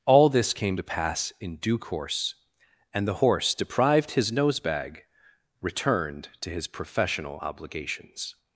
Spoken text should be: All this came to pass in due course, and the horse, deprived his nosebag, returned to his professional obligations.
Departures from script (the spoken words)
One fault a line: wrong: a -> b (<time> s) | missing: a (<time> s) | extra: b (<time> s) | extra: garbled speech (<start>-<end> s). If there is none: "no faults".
no faults